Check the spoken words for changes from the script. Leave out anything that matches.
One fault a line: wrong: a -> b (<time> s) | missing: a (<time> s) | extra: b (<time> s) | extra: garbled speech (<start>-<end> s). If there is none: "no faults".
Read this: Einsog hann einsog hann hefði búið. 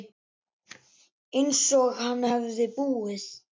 missing: einsog hann (2.3 s)